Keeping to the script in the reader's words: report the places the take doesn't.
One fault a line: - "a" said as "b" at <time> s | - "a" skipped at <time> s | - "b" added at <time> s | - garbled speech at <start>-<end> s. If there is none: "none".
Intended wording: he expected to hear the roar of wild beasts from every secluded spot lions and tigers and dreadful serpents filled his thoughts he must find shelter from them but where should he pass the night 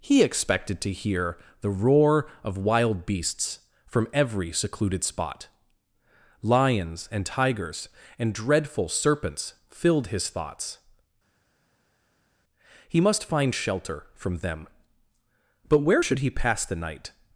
none